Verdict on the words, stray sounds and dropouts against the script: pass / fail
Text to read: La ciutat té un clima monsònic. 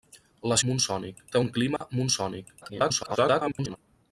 fail